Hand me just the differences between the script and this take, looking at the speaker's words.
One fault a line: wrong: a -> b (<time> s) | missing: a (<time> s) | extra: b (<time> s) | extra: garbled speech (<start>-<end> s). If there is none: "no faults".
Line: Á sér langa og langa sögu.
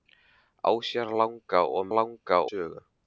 no faults